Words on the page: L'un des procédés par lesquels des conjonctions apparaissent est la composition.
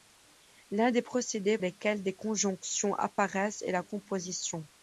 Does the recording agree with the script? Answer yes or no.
no